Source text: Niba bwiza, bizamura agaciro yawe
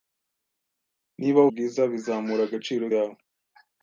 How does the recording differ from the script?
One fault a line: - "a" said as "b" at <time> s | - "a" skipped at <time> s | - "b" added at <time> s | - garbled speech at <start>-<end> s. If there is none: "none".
none